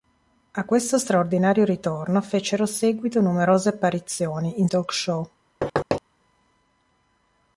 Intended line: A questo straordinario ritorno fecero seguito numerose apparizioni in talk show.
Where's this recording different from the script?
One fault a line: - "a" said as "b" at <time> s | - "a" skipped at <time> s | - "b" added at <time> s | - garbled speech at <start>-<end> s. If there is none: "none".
none